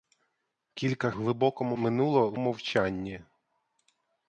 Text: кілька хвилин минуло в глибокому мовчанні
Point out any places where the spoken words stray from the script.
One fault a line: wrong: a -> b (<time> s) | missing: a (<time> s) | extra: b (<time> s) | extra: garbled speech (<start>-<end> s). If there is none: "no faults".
wrong: хвилин -> глибокому (1.1 s)
missing: глибокому (2.4 s)